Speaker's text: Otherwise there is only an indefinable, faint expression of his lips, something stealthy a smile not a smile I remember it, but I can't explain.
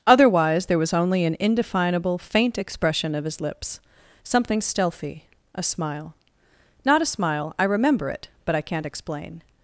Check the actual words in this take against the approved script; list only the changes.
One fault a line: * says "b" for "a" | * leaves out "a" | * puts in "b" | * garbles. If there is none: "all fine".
* says "was" for "is"